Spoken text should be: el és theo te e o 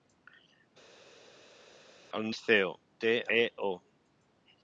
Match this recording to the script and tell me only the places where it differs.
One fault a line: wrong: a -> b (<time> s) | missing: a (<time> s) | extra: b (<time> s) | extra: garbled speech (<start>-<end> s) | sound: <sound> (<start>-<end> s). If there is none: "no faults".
no faults